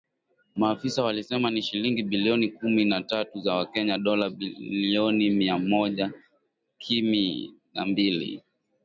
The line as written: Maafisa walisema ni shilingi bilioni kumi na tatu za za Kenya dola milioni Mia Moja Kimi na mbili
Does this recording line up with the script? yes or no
no